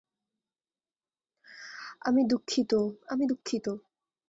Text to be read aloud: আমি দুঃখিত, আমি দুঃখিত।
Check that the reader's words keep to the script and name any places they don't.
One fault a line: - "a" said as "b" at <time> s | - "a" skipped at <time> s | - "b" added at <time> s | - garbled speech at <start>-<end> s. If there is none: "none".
none